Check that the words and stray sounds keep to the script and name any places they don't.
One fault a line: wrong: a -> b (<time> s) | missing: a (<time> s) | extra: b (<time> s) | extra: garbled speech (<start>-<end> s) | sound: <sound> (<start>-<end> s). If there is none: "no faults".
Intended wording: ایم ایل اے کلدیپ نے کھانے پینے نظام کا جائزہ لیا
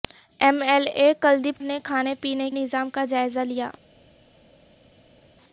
no faults